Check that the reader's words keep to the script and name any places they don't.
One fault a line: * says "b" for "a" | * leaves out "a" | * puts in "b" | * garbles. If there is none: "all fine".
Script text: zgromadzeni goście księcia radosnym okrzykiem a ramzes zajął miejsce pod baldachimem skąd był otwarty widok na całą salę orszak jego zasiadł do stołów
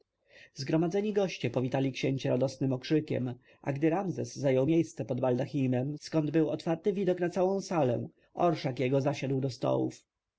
* puts in "powitali"
* puts in "gdy"